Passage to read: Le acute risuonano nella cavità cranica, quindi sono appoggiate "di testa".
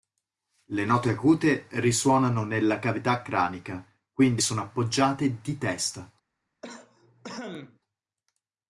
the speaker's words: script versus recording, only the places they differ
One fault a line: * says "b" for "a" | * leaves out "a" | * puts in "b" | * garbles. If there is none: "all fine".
* puts in "note"